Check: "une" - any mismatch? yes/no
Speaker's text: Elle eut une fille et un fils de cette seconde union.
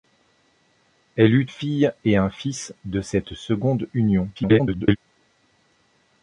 yes